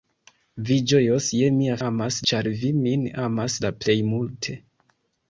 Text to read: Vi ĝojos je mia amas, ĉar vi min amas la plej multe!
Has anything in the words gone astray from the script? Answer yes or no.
no